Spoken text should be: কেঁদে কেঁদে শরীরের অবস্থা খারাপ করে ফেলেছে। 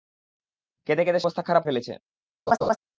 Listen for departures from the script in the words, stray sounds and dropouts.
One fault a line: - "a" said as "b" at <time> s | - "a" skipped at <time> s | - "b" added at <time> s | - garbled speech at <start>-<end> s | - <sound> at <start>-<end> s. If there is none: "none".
- "শরীরের" skipped at 1.2 s
- "করে" skipped at 1.6 s
- laugh at 2.5-2.8 s